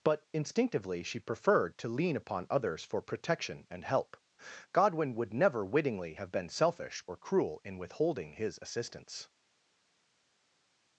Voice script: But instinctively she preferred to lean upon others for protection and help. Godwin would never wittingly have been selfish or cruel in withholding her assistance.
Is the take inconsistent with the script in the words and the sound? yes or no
yes